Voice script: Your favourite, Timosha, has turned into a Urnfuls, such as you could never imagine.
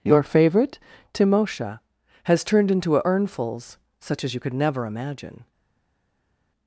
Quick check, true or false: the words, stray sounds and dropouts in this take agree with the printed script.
true